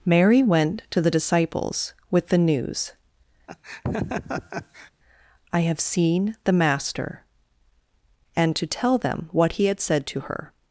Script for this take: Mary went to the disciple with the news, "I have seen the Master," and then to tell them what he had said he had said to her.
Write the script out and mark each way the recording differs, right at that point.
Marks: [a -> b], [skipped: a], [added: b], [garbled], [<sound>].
Mary went to the [disciple -> disciples] with the news, [laugh] "I have seen the Master," and [skipped: then] to tell them what he had said [skipped: he had said] to her.